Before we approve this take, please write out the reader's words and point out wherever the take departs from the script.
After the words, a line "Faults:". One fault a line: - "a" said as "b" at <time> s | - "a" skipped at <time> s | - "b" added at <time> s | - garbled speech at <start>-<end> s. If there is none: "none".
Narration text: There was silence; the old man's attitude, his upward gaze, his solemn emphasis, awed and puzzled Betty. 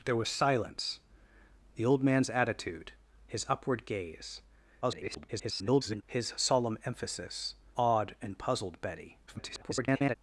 There was silence; the old man's attitude, his upward gaze, [garbled] his solemn emphasis, awed and puzzled Betty. [garbled]
Faults:
- garbled speech at 4.8-6.0 s
- garbled speech at 9.3-10.2 s